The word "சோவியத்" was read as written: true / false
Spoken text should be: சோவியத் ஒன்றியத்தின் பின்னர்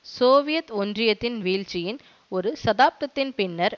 true